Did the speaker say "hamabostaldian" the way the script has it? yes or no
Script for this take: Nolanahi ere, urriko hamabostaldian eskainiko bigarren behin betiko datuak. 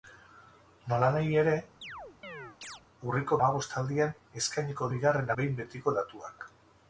yes